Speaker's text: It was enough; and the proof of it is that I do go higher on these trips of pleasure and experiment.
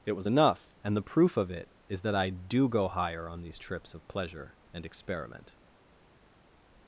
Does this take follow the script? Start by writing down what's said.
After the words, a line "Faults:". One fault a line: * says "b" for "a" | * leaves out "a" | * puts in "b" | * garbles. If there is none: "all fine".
It was enough; and the proof of it is that I do go higher on these trips of pleasure and experiment.
Faults:
all fine